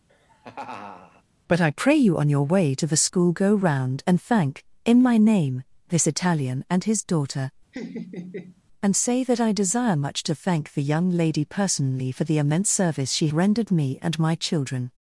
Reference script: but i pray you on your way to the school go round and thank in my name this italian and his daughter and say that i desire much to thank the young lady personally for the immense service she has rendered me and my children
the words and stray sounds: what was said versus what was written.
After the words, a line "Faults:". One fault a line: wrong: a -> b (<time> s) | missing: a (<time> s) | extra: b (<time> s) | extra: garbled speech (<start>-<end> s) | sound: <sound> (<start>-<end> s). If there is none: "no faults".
but i pray you on your way to the school go round and thank in my name this italian and his daughter and say that i desire much to thank the young lady personally for the immense service she rendered me and my children
Faults:
sound: laugh (0.1-1.2 s)
sound: laugh (7.7-8.6 s)
missing: has (13.3 s)